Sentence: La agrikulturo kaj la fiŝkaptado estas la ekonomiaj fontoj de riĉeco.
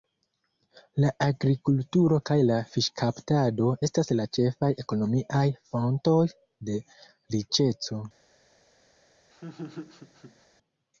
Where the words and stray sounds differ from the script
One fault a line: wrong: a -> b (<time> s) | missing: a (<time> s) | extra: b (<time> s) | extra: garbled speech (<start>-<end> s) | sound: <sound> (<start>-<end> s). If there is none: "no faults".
extra: ĉefaj (4.4 s)
sound: laugh (9.3-10.5 s)